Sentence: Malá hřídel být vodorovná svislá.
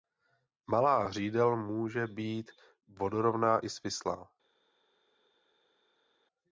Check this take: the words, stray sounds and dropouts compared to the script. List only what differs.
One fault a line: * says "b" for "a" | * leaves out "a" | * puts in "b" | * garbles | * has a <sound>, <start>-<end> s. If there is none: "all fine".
* puts in "může"
* puts in "i"